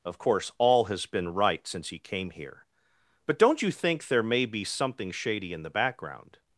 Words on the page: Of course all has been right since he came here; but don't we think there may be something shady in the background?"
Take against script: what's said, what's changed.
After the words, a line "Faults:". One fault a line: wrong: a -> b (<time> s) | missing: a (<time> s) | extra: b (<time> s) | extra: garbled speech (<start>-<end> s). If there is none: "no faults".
Of course all has been right since he came here; but don't you think there may be something shady in the background?"
Faults:
wrong: we -> you (3.6 s)